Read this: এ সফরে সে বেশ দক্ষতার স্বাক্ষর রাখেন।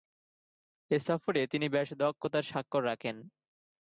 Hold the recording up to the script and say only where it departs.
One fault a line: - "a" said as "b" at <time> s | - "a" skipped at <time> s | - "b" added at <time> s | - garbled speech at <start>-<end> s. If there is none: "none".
- "সে" said as "তিনি" at 1.5 s